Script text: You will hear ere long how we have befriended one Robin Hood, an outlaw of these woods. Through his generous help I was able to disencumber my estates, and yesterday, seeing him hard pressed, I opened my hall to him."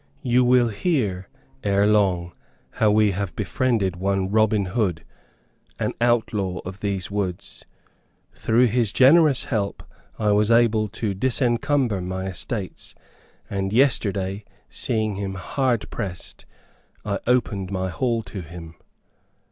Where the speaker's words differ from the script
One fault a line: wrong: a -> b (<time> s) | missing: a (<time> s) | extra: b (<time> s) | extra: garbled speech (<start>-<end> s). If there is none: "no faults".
no faults